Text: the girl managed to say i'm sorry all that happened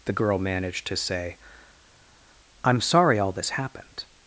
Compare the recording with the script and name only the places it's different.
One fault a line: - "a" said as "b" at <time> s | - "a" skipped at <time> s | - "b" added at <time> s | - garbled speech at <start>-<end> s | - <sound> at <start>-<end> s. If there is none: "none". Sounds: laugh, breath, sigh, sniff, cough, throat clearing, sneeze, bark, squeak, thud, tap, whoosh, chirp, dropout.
- "that" said as "this" at 3.3 s